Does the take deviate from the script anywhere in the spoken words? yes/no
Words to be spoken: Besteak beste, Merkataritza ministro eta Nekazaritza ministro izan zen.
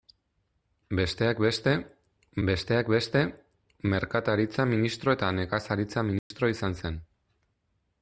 yes